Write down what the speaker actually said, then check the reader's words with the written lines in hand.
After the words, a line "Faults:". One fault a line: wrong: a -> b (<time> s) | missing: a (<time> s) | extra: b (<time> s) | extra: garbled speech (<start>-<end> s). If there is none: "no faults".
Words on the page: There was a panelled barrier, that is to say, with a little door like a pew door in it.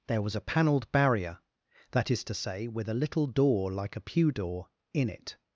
There was a panelled barrier, that is to say, with a little door like a pew door in it.
Faults:
no faults